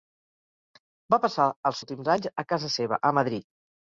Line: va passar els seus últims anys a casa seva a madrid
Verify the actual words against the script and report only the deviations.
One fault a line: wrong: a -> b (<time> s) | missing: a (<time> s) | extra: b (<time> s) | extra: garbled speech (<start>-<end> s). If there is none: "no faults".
missing: seus (1.8 s)